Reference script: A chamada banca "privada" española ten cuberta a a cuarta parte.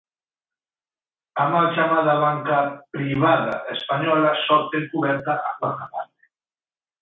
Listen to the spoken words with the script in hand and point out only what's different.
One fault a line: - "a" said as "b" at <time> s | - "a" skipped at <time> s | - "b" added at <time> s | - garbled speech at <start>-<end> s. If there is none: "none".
- "mal" added at 1.5 s
- "só" added at 4.5 s
- "a" skipped at 5.6 s